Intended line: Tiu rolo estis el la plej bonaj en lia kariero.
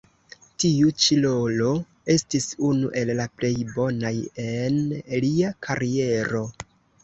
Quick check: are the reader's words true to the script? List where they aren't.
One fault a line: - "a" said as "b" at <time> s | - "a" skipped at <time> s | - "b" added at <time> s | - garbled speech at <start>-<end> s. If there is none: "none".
- "ĉi" added at 1.0 s
- "unu" added at 2.7 s